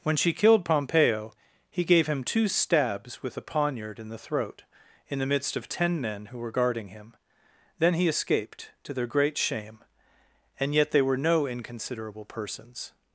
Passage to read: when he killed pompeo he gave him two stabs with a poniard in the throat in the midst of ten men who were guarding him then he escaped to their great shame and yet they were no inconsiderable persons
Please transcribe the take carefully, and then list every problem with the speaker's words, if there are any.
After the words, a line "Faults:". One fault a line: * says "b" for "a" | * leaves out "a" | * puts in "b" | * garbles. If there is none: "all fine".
when she killed pompeo he gave him two stabs with a poniard in the throat in the midst of ten men who were guarding him then he escaped to their great shame and yet they were no inconsiderable persons
Faults:
* says "she" for "he"